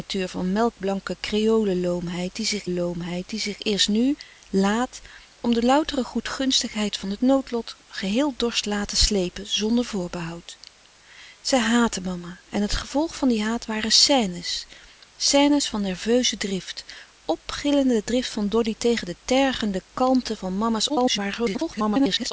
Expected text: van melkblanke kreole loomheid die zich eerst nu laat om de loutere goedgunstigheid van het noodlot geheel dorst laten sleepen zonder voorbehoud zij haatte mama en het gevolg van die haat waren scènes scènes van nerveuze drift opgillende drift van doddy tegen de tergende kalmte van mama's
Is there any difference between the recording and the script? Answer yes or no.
yes